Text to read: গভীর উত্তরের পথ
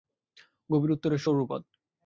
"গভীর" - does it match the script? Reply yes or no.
yes